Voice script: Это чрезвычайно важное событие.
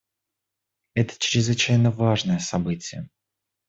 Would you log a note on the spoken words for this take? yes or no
no